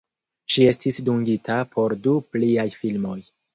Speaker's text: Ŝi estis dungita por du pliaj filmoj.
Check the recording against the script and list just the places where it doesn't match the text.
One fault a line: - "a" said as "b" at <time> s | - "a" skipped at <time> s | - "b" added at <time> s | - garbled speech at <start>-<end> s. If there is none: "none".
none